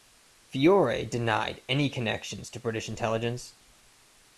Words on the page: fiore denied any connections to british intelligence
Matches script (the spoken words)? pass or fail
pass